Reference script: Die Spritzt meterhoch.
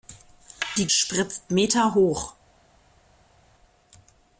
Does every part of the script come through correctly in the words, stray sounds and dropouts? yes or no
yes